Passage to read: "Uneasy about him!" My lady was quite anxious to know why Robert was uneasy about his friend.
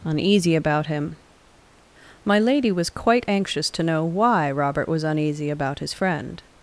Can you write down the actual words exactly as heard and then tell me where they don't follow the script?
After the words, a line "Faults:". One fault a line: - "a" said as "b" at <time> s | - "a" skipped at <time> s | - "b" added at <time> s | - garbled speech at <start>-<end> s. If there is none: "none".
"Uneasy about him!" My lady was quite anxious to know why Robert was uneasy about his friend.
Faults:
none